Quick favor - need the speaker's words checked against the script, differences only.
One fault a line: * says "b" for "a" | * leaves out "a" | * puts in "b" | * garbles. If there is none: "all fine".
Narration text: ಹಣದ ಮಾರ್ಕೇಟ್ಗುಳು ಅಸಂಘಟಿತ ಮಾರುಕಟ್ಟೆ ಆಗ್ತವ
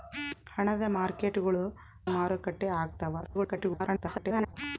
* leaves out "ಅಸಂಘಟಿತ"
* garbles